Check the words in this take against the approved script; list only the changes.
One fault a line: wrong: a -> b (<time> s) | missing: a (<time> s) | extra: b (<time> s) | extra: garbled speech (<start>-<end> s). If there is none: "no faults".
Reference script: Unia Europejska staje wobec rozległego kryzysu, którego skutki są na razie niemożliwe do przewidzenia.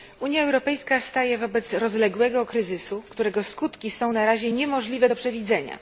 no faults